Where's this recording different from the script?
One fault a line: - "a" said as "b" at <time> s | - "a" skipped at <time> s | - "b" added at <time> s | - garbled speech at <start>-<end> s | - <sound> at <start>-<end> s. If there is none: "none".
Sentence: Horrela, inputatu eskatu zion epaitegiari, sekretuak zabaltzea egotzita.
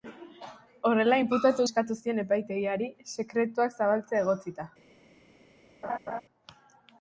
- laugh at 5.8-6.2 s